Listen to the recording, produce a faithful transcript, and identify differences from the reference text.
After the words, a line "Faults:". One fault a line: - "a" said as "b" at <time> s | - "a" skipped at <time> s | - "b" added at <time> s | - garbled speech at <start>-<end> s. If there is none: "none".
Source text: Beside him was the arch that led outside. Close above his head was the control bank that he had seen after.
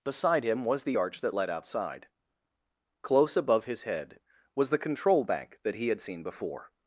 Beside him was the arch that led outside. Close above his head was the control bank that he had seen before.
Faults:
- "after" said as "before" at 6.2 s